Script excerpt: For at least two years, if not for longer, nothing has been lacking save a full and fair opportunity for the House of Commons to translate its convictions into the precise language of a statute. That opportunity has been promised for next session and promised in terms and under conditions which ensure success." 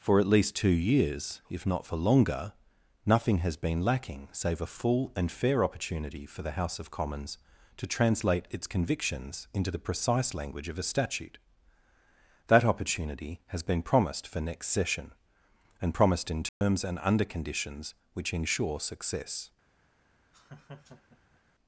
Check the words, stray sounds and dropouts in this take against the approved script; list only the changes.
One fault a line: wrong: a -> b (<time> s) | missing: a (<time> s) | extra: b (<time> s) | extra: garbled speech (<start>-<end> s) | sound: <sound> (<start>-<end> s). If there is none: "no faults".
sound: dropout (16.5-16.6 s)
sound: laugh (20.3-21.4 s)